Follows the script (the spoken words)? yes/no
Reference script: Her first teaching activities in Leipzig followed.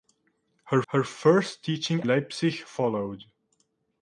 no